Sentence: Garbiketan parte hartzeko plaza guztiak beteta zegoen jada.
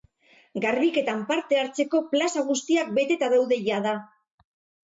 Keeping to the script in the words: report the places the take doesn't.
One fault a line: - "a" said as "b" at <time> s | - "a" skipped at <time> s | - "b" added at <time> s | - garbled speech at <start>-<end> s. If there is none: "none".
- "zegoen" said as "daude" at 3.4 s